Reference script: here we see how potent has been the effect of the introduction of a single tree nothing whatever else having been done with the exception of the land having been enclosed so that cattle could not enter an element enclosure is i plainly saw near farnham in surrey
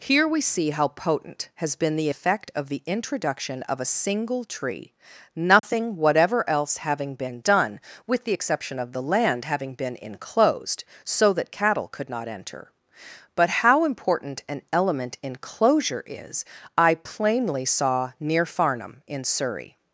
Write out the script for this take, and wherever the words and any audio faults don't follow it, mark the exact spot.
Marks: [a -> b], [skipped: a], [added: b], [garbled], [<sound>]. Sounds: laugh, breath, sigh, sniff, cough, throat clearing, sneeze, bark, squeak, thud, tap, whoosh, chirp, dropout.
here we see how potent has been the effect of the introduction of a single tree nothing [dropout] whatever else having been done with the exception of the land having been enclosed so that cattle could not enter [added: but how important] an element enclosure is i plainly saw near farnham in surrey